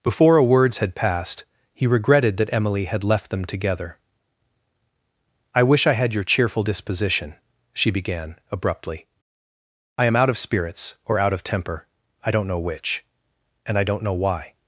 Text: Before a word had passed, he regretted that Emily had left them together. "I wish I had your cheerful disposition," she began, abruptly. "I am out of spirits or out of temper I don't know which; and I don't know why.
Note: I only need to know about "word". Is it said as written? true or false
false